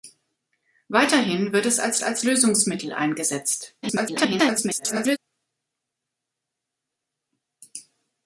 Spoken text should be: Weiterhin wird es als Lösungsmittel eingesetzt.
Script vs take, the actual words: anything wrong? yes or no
yes